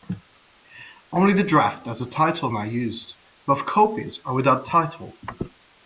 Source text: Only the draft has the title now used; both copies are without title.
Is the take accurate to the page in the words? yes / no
yes